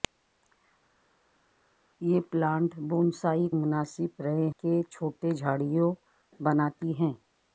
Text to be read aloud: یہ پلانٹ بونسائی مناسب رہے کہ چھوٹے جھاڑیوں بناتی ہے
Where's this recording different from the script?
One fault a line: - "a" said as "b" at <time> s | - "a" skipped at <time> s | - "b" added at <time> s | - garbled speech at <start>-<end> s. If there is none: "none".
none